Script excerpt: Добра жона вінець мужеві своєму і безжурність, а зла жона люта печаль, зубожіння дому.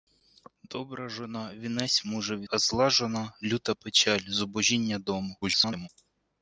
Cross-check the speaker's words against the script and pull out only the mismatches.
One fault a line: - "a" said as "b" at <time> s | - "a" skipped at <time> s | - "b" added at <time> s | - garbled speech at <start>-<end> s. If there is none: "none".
- "своєму і безжурність" skipped at 2.5 s
- garbled speech at 5.4-5.9 s